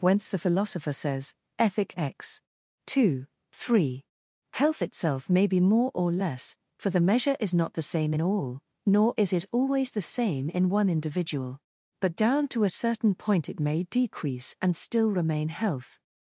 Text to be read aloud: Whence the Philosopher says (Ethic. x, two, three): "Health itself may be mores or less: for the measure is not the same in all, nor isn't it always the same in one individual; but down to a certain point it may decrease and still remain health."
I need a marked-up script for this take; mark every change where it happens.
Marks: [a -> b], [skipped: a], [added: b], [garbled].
Whence the Philosopher says (Ethic. x, two, three): "Health itself may be [mores -> more] or less: for the measure is not the same in all, nor [isn't -> is] it always the same in one individual; but down to a certain point it may decrease and still remain health."